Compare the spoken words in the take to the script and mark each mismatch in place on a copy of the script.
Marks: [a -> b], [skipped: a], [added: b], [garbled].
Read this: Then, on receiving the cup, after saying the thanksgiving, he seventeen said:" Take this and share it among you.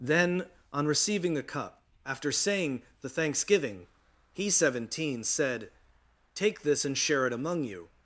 Then, on receiving the cup, after saying the thanksgiving, he seventeen said:" Take this and share it among you.